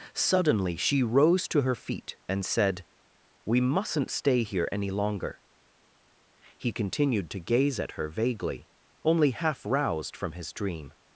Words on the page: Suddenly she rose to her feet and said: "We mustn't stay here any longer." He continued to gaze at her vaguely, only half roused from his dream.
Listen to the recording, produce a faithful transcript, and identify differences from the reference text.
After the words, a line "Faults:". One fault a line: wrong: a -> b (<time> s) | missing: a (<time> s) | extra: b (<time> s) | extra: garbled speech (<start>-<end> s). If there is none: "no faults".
Suddenly she rose to her feet and said: "We mustn't stay here any longer." He continued to gaze at her vaguely, only half roused from his dream.
Faults:
no faults